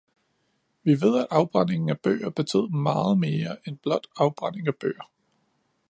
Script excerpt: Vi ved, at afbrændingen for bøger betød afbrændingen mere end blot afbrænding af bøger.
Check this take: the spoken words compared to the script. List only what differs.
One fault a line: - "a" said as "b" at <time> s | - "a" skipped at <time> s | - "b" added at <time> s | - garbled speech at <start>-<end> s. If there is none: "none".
- "for" said as "af" at 1.9 s
- "afbrændingen" said as "meget" at 2.7 s